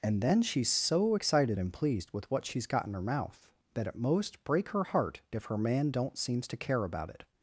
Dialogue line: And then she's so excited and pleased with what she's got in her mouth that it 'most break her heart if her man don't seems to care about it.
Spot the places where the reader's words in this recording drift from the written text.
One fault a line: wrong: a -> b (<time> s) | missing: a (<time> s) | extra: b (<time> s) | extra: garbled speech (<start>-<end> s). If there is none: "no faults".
no faults